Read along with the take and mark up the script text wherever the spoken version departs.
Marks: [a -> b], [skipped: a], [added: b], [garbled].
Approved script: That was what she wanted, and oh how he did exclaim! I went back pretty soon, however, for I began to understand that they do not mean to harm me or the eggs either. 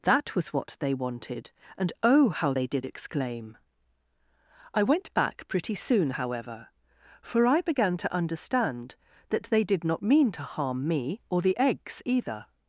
That was what [she -> they] wanted, and oh how [he -> they] did exclaim! I went back pretty soon, however, for I began to understand that they [do -> did] not mean to harm me or the eggs either.